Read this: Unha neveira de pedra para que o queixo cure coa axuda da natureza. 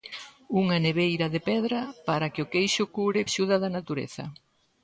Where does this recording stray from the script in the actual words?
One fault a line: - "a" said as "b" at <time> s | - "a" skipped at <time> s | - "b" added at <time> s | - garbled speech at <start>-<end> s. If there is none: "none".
- "coa" skipped at 3.2 s